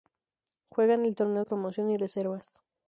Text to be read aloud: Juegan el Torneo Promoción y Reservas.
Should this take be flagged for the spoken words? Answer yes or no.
no